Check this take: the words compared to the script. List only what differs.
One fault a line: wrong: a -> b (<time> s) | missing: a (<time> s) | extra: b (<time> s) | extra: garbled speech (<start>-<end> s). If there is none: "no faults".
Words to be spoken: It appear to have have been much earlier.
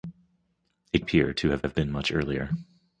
no faults